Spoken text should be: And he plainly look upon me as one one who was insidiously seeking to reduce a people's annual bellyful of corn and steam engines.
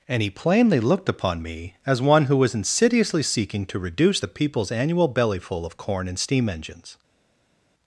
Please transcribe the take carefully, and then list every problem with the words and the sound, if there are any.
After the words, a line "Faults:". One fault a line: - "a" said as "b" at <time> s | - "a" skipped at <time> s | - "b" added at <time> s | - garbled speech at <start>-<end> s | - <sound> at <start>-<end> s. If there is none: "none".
And he plainly looked upon me as one who was insidiously seeking to reduce the people's annual bellyful of corn and steam engines.
Faults:
- "look" said as "looked" at 0.8 s
- "one" skipped at 2.2 s
- "a" said as "the" at 4.2 s